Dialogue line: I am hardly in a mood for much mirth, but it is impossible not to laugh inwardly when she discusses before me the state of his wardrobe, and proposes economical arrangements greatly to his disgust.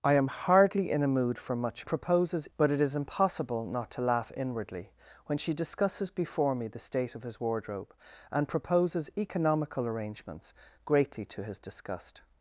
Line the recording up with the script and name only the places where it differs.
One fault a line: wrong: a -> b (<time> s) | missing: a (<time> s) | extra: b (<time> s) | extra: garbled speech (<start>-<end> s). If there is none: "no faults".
wrong: mirth -> proposes (1.8 s)